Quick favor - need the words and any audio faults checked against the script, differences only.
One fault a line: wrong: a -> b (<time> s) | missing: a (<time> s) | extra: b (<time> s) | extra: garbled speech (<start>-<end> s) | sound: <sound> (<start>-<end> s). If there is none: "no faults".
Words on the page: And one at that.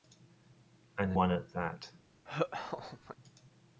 sound: laugh (2.3-3.2 s)